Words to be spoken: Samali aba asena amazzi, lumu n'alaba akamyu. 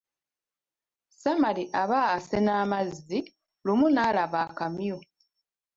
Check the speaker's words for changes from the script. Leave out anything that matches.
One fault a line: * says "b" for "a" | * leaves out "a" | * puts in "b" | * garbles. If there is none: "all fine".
all fine